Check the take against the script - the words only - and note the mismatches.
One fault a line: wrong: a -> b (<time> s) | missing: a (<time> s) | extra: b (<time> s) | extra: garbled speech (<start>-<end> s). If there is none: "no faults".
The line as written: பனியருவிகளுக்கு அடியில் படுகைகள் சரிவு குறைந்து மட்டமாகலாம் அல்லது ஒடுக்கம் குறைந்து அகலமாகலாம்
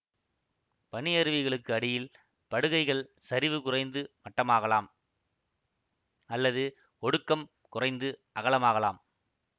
no faults